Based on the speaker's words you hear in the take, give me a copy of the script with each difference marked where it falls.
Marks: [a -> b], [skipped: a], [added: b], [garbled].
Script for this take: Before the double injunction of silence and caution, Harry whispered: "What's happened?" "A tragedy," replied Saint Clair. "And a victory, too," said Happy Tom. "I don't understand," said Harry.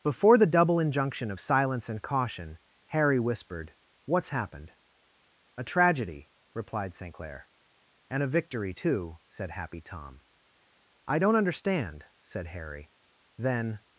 Before the double injunction of silence and caution, Harry whispered: "What's happened?" "A tragedy," replied Saint Clair. "And a victory, too," said Happy Tom. "I don't understand," said Harry. [added: Then]